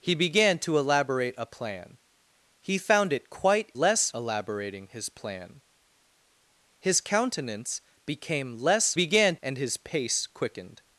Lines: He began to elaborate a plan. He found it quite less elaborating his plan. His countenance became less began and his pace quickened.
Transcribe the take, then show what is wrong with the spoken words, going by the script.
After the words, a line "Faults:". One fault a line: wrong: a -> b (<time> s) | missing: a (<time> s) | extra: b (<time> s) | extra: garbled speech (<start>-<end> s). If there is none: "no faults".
He began to elaborate a plan. He found it quite less elaborating his plan. His countenance became less began and his pace quickened.
Faults:
no faults